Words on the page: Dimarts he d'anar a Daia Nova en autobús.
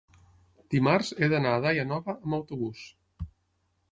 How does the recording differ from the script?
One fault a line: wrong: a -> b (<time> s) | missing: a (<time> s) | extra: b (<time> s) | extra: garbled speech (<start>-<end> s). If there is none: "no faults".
wrong: en -> amb (2.1 s)